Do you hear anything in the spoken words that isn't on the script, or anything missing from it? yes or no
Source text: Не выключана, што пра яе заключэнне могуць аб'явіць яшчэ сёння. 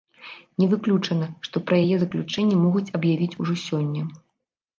yes